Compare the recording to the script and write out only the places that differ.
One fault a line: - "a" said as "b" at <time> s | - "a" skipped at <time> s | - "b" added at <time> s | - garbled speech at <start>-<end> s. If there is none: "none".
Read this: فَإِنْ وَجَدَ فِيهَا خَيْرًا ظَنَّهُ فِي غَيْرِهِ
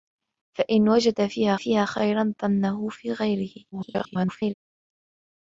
- "فِيهَا" added at 1.5 s
- garbled speech at 3.7-4.5 s